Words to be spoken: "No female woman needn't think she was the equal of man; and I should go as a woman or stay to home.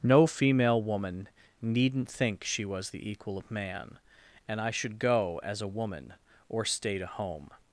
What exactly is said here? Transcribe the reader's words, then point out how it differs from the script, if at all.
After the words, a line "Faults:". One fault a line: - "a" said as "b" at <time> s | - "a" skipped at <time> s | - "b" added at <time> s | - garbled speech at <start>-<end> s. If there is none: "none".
"No female woman needn't think she was the equal of man; and I should go as a woman or stay to home.
Faults:
none